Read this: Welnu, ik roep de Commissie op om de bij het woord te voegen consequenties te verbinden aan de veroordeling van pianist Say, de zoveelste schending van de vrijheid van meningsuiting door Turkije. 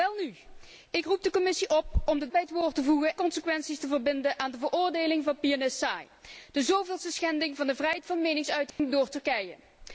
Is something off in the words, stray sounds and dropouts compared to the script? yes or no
yes